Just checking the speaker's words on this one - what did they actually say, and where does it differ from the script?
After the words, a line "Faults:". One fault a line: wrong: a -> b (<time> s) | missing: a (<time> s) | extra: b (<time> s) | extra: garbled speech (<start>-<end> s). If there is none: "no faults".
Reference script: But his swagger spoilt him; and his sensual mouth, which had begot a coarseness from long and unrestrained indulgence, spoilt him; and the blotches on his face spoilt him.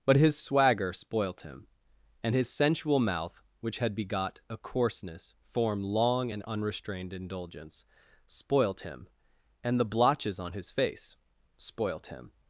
But his swagger spoilt him; and his sensual mouth, which had begot a coarseness form long and unrestrained indulgence, spoilt him; and the blotches on his face spoilt him.
Faults:
wrong: from -> form (5.4 s)